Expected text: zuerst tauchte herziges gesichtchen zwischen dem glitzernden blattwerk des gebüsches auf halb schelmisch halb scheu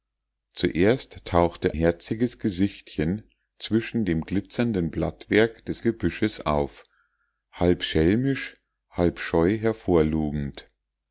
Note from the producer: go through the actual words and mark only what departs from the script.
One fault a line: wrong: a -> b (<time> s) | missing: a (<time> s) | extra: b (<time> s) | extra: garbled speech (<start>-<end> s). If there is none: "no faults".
no faults